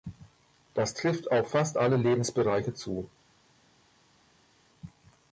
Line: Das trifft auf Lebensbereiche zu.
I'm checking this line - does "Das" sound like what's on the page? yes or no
yes